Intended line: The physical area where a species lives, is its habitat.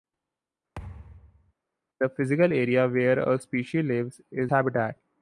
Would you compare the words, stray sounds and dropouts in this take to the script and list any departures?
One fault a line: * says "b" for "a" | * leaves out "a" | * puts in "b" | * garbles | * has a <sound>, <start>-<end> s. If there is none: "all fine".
* has a thud, 0.8-1.5 s
* leaves out "its"